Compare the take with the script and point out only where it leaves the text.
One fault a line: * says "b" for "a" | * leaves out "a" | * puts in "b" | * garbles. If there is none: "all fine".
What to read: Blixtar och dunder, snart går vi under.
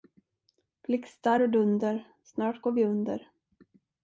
all fine